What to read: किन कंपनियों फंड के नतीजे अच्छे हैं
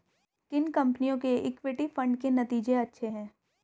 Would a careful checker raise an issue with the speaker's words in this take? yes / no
yes